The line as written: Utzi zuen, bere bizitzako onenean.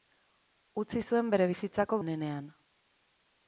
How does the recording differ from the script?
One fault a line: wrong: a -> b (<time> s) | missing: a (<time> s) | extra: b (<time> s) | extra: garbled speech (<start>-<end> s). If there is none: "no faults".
no faults